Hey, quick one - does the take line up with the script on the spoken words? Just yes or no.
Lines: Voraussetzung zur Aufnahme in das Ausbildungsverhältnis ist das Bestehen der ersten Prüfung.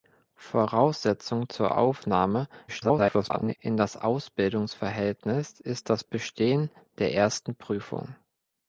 no